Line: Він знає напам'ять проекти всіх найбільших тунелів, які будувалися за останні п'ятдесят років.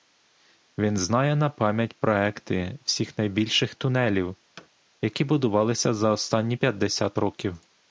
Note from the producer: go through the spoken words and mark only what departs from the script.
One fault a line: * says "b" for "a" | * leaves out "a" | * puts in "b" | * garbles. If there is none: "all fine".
all fine